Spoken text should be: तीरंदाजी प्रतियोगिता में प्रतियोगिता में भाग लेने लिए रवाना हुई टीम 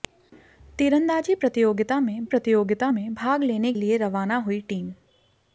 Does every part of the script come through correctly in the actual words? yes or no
yes